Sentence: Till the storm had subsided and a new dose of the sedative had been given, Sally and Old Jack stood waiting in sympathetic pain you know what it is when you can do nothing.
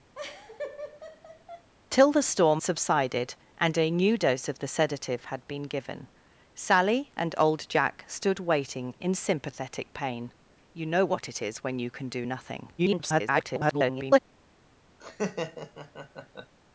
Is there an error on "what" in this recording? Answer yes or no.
no